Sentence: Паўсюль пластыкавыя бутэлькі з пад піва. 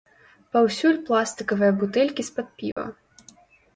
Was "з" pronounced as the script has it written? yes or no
yes